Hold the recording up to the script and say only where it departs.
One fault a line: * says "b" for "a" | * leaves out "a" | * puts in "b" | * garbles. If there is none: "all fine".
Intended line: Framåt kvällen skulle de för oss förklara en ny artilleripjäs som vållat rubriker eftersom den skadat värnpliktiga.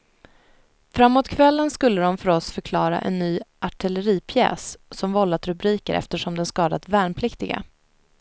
all fine